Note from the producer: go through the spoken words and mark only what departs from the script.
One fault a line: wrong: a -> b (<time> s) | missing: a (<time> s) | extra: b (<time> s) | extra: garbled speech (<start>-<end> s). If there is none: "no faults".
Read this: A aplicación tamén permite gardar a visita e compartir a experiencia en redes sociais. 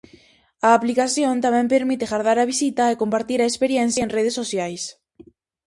no faults